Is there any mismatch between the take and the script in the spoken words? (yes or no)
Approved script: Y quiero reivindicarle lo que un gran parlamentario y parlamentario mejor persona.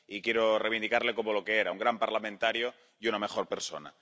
yes